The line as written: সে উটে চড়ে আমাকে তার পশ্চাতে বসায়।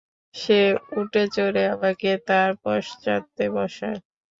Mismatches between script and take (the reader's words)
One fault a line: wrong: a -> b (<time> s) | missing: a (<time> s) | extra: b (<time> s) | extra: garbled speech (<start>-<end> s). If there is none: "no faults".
no faults